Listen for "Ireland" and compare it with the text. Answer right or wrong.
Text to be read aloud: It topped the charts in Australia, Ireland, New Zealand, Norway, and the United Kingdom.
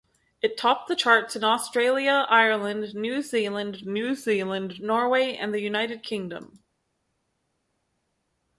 right